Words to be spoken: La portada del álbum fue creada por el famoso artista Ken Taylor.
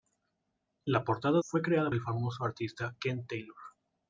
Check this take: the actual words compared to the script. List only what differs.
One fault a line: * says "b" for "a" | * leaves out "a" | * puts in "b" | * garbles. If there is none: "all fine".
* leaves out "del álbum"
* leaves out "por"